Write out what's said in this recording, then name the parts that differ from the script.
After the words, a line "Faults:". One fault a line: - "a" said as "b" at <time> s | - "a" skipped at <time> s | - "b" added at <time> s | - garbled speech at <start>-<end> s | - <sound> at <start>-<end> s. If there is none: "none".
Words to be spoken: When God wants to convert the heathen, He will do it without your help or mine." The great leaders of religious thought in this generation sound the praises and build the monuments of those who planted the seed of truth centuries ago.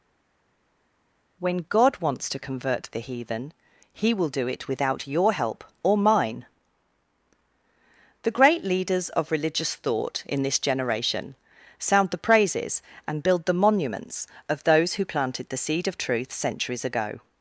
When God wants to convert the heathen, He will do it without your help or mine." The great leaders of religious thought in this generation sound the praises and build the monuments of those who planted the seed of truth centuries ago.
Faults:
none